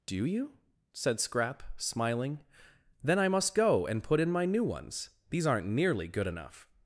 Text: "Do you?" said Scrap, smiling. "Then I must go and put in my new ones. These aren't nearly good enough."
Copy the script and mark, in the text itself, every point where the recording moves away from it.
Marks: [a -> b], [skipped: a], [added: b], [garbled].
"Do you?" said Scrap, smiling. "Then I must go and put in my new ones. These aren't nearly good enough."